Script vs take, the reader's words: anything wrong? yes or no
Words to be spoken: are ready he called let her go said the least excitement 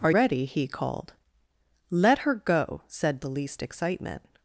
no